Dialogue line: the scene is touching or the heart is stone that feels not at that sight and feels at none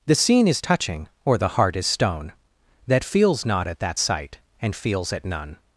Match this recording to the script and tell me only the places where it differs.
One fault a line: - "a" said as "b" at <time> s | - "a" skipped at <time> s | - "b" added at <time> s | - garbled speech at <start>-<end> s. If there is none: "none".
none